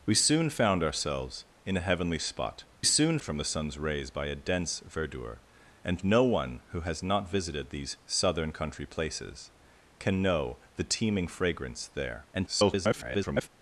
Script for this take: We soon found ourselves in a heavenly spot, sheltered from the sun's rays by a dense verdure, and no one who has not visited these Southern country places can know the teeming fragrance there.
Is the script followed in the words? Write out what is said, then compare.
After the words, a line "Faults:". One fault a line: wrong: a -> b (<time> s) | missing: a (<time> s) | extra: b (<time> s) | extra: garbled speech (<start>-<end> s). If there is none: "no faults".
We soon found ourselves in a heavenly spot, soon from the sun's rays by a dense verdure, and no one who has not visited these Southern country places can know the teeming fragrance there. [garbled]
Faults:
wrong: sheltered -> soon (2.8 s)
extra: garbled speech (12.3-13.5 s)